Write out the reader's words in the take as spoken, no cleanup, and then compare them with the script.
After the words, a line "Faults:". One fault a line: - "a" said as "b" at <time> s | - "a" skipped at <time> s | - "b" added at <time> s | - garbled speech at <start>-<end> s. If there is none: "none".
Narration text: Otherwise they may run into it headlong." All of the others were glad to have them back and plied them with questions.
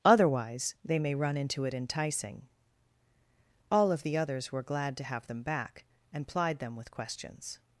Otherwise they may run into it enticing." All of the others were glad to have them back and plied them with questions.
Faults:
- "headlong" said as "enticing" at 1.7 s